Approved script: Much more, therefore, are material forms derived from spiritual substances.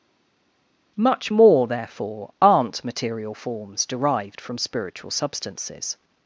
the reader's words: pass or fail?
fail